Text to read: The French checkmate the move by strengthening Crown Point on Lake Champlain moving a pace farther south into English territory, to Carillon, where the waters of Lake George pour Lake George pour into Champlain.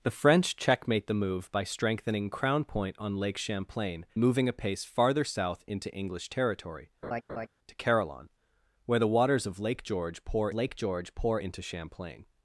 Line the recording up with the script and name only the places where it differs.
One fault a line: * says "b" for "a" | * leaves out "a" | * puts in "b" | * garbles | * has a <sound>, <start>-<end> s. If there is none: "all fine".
* has a laugh, 7.0-7.5 s